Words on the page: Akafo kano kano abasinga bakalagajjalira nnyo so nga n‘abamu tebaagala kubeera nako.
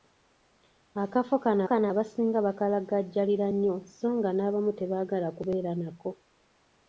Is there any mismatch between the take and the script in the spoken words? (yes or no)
no